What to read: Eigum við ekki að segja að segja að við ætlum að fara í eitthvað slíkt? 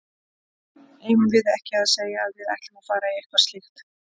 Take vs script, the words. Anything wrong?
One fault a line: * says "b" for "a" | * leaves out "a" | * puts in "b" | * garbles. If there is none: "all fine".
* leaves out "segja að"